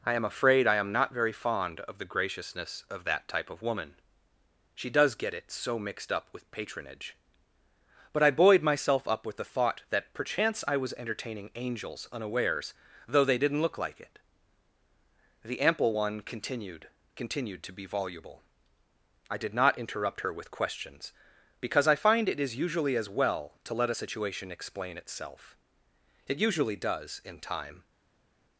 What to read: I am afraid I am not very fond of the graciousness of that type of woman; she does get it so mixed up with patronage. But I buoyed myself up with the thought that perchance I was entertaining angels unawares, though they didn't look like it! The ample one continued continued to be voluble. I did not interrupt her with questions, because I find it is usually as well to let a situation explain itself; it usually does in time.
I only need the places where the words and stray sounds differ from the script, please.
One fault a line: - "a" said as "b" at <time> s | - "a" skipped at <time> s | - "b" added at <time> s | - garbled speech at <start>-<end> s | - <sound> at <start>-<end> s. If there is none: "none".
none